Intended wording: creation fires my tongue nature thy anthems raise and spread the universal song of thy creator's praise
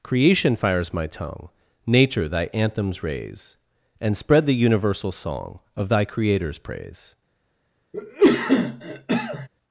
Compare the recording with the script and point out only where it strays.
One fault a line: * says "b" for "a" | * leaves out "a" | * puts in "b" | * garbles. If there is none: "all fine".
all fine